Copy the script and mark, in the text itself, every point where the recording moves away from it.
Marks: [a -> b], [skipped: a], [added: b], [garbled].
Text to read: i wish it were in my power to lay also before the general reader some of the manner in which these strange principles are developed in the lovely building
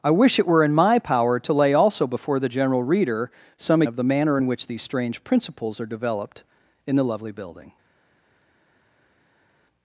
i wish it were in my power to lay also before the general reader some of the manner in which these strange principles are developed in the lovely building